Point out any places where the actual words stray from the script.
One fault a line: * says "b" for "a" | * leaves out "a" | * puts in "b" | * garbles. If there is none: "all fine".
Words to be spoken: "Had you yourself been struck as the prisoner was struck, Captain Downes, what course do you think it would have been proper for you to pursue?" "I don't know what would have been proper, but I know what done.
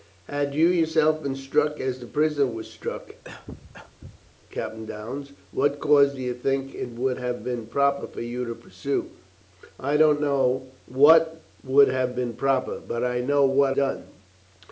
all fine